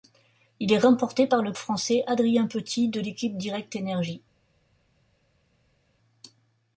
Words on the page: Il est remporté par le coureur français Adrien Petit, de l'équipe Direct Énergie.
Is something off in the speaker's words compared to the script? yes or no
yes